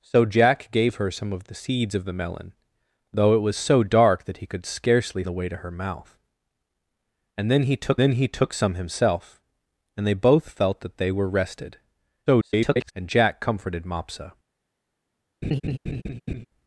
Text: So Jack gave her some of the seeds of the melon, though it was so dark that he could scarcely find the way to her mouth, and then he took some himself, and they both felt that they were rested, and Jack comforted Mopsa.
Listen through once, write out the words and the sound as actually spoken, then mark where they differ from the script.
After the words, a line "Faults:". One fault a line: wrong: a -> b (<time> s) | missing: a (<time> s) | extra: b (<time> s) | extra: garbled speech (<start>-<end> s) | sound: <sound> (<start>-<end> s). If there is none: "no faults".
So Jack gave her some of the seeds of the melon, though it was so dark that he could scarcely the way to her mouth, and then he took then he took some himself, and they both felt that they were rested, [garbled] and Jack comforted Mopsa.
Faults:
missing: find (5.2 s)
extra: then he took (8.0 s)
extra: garbled speech (12.3-12.9 s)
sound: laugh (15.4-16.5 s)